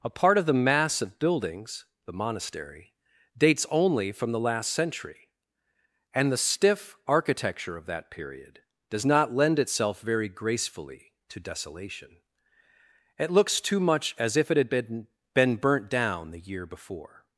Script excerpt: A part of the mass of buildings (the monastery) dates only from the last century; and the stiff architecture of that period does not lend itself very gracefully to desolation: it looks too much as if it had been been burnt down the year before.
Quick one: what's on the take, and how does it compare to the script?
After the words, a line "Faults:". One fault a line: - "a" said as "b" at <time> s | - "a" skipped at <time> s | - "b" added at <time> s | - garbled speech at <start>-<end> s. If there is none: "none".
A part of the mass of buildings (the monastery) dates only from the last century; and the stiff architecture of that period does not lend itself very gracefully to desolation: it looks too much as if it had been been burnt down the year before.
Faults:
none